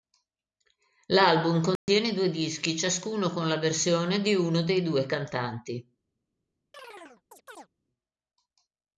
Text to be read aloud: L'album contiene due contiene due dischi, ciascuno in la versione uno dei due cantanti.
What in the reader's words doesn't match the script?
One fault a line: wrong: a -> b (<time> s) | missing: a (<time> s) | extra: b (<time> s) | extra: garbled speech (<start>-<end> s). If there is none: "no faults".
missing: contiene due (2.3 s)
wrong: in -> con (3.3 s)
extra: di (4.2 s)